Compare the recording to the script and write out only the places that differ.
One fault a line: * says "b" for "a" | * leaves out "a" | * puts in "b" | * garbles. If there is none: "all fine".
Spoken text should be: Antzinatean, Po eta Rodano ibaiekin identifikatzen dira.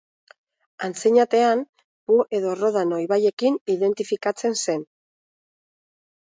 * says "edo" for "eta"
* says "zen" for "dira"